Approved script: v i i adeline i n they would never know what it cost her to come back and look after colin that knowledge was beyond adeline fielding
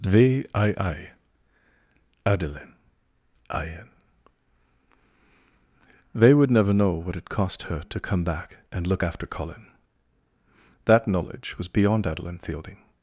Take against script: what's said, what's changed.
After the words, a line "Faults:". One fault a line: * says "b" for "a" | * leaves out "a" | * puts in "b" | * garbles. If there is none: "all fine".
v i i adeline i n they would never know what it cost her to come back and look after colin that knowledge was beyond adeline fielding
Faults:
all fine